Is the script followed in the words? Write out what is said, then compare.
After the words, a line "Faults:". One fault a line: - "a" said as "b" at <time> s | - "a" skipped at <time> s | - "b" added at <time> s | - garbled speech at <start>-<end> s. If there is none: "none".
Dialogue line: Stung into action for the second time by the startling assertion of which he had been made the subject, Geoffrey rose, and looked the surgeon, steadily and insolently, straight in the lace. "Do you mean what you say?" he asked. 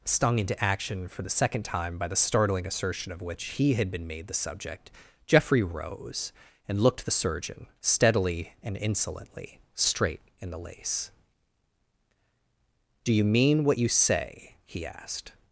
Stung into action for the second time by the startling assertion of which he had been made the subject, Geoffrey rose, and looked the surgeon, steadily and insolently, straight in the lace. "Do you mean what you say?" he asked.
Faults:
none